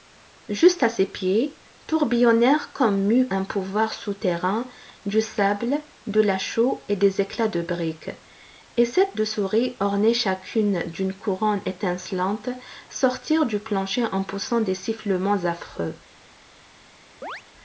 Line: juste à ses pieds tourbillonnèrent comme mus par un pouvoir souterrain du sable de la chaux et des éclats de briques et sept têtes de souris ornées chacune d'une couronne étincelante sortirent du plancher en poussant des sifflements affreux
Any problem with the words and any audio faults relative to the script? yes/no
yes